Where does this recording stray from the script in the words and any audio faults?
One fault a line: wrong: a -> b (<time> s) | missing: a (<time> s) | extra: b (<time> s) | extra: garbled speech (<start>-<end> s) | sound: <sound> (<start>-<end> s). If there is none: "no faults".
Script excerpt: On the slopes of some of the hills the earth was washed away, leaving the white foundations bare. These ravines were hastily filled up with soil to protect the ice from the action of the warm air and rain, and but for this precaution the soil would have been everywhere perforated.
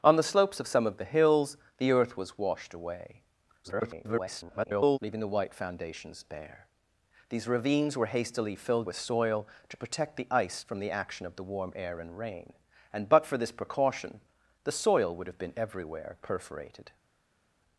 extra: garbled speech (3.6-5.0 s)
missing: up (8.9 s)